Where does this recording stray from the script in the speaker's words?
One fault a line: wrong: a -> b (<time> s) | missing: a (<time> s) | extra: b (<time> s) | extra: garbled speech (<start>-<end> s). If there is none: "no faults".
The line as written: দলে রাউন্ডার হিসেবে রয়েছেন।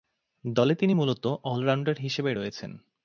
extra: তিনি মূলতঃ অল (0.8 s)